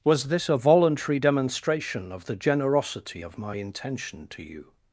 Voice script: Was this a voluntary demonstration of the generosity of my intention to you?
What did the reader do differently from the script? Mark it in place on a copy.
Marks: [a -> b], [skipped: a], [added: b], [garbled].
Was this a voluntary demonstration of the generosity of my intention to you?